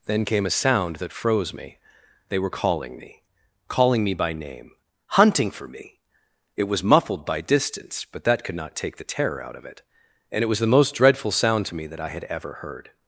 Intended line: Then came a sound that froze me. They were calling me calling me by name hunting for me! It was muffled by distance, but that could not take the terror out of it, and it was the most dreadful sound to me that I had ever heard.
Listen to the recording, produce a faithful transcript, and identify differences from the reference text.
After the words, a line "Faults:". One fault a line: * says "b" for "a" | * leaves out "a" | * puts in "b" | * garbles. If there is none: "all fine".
Then came a sound that froze me. They were calling me calling me by name hunting for me! It was muffled by distance, but that could not take the terror out of it, and it was the most dreadful sound to me that I had ever heard.
Faults:
all fine